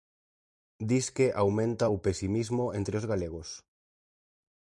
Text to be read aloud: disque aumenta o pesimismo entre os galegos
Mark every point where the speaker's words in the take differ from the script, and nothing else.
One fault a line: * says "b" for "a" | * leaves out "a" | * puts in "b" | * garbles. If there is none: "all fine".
all fine